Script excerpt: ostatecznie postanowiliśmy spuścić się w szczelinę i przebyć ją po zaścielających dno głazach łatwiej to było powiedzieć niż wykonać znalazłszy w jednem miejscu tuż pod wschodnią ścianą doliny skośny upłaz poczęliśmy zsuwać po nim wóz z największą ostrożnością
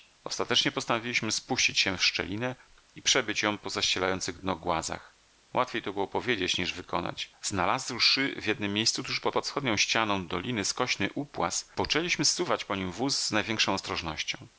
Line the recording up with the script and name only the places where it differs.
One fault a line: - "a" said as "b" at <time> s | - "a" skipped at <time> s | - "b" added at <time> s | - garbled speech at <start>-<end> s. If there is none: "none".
- "pod" added at 9.3 s